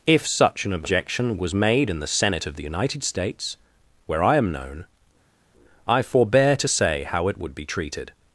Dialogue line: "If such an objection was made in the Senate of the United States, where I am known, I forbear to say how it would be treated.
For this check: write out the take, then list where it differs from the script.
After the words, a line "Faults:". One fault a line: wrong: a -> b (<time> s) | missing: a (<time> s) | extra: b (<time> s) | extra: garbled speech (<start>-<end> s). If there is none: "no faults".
"If such an objection was made in the Senate of the United States, where I am known, I forbear to say how it would be treated.
Faults:
no faults